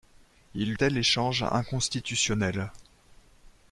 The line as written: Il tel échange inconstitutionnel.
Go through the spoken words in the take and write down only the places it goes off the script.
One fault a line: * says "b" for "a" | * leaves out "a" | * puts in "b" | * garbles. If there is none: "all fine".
all fine